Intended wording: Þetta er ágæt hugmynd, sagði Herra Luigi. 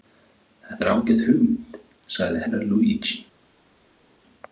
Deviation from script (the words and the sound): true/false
false